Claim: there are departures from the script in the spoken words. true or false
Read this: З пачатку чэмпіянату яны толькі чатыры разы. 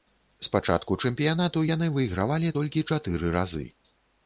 true